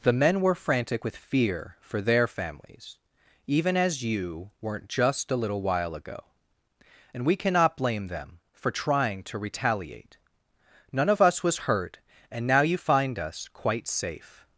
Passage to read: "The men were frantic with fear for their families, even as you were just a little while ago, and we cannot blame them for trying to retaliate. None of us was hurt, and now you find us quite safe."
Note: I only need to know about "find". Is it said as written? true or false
true